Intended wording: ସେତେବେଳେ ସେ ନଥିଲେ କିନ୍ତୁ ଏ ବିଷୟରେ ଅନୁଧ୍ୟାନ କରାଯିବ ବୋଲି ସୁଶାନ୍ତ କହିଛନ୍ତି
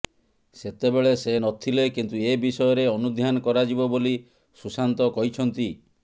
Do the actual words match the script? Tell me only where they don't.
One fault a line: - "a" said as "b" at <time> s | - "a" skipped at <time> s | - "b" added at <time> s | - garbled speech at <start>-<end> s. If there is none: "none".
none